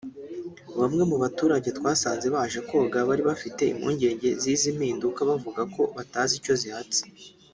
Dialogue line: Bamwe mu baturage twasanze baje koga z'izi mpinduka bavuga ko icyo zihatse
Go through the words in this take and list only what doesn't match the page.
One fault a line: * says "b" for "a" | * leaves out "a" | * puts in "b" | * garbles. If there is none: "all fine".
* puts in "bari bafite impungenge"
* puts in "batazi"